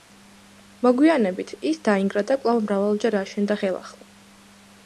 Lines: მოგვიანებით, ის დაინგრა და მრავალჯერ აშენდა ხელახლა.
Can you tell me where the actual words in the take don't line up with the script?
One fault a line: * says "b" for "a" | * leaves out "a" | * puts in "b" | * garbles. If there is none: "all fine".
* puts in "კვლავ"